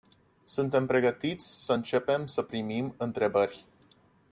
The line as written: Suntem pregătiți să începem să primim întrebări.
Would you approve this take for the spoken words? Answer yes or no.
yes